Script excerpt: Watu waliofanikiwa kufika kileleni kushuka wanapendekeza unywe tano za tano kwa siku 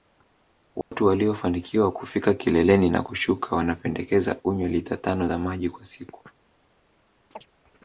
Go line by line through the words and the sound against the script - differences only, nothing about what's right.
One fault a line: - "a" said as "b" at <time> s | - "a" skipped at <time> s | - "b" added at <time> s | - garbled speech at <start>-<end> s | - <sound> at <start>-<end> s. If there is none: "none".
- dropout at 0.8-0.9 s
- "na" added at 2.9 s
- "lita" added at 4.7 s
- "tano" said as "maji" at 5.4 s
- chirp at 7.3-7.5 s